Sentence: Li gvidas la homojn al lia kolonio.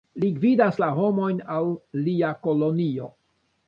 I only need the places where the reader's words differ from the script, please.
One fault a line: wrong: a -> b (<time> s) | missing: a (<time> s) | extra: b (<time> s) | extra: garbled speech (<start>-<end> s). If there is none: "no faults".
no faults